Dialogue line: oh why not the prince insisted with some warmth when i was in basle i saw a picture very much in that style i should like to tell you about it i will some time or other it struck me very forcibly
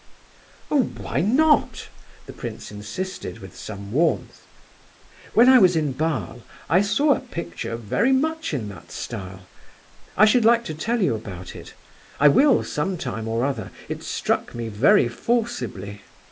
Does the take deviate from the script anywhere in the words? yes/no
no